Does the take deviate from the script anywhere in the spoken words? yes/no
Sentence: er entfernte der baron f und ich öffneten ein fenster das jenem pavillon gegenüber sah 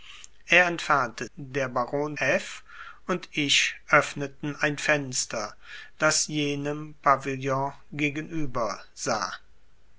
no